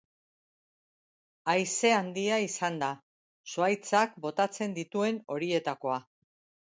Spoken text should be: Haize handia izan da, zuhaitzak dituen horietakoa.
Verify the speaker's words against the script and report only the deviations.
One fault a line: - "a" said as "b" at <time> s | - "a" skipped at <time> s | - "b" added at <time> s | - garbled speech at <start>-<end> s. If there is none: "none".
- "botatzen" added at 4.3 s